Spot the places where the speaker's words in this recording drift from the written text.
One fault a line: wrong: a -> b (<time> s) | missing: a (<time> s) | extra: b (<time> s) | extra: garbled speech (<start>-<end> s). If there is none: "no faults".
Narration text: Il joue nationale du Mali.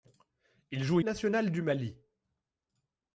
no faults